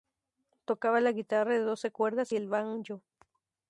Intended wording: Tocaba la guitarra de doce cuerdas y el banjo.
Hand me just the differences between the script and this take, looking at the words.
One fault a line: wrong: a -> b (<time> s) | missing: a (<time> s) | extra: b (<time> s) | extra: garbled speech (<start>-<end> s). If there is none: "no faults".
no faults